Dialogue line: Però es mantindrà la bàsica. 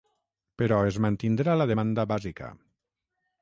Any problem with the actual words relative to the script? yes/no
yes